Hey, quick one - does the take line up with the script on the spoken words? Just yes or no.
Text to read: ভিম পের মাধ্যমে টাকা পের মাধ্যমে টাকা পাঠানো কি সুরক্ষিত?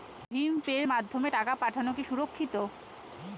no